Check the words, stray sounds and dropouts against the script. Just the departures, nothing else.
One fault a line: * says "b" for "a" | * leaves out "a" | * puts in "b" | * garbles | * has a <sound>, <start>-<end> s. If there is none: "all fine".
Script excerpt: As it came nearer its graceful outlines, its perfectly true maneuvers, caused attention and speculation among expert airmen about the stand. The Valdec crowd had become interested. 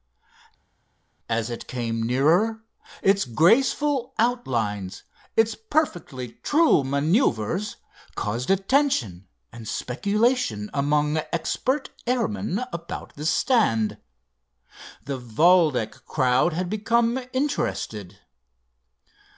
all fine